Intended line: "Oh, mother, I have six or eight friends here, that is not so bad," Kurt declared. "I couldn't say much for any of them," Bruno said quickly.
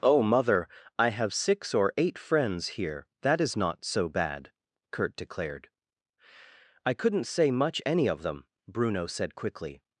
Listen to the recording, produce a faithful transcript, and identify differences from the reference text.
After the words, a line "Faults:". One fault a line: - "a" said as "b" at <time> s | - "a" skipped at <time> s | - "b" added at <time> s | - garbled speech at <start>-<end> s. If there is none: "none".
"Oh, mother, I have six or eight friends here, that is not so bad," Kurt declared. "I couldn't say much any of them," Bruno said quickly.
Faults:
- "for" skipped at 7.8 s